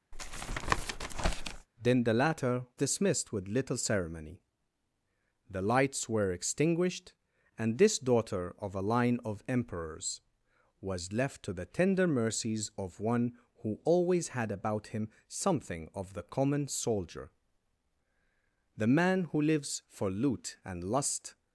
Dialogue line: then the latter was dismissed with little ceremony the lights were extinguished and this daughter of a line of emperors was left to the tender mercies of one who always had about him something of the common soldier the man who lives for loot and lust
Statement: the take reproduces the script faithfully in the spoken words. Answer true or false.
false